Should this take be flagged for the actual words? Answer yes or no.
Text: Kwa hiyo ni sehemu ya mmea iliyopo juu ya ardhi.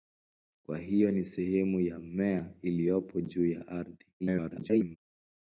yes